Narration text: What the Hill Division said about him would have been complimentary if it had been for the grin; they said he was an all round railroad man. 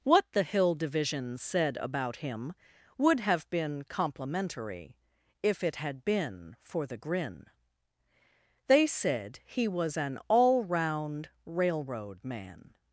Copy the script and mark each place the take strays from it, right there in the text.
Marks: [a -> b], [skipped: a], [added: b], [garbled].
What the Hill Division said about him would have been complimentary if it had been for the grin; they said he was an all round railroad man.